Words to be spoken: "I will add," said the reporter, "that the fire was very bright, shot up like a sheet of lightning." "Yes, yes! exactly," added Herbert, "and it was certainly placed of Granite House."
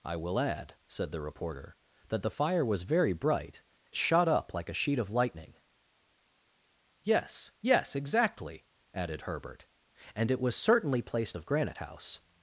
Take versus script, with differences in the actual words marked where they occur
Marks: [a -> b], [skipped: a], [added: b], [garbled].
"I will add," said the reporter, "that the fire was very bright, shot up like a sheet of lightning." "Yes, yes! exactly," added Herbert, "and it was certainly placed of Granite House."